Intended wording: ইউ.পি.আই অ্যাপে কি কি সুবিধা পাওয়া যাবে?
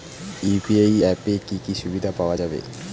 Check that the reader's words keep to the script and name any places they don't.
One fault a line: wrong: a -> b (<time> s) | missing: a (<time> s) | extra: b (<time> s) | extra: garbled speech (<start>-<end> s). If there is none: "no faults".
no faults